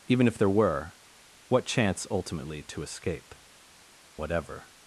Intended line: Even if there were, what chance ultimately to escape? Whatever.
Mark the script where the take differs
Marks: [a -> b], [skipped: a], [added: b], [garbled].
Even if there were, what chance ultimately to escape? Whatever.